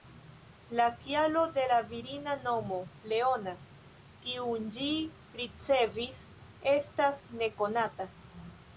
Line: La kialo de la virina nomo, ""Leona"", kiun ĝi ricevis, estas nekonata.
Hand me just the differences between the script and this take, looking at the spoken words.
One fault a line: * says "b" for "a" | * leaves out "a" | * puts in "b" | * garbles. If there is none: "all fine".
all fine